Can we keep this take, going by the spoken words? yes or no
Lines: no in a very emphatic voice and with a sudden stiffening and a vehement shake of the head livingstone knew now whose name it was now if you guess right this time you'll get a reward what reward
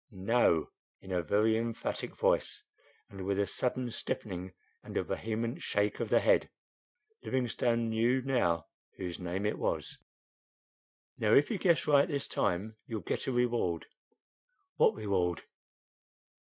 yes